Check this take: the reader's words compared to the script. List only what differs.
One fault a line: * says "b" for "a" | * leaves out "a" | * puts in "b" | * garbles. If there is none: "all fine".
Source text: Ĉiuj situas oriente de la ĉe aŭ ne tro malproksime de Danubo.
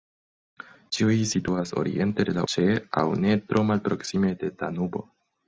all fine